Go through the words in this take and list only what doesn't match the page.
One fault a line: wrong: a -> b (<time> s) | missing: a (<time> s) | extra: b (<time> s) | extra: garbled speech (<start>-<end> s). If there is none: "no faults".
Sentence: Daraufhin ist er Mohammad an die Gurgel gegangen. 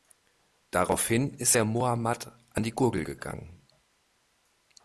no faults